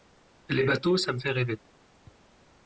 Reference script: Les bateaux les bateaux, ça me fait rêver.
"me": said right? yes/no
yes